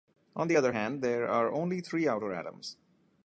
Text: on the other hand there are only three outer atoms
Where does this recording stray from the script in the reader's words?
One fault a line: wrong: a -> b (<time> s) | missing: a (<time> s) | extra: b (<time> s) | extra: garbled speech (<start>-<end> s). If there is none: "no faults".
no faults